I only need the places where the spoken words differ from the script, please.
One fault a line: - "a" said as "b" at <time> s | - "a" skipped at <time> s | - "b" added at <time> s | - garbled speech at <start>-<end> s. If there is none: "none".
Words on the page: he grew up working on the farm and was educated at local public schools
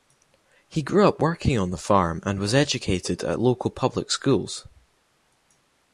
none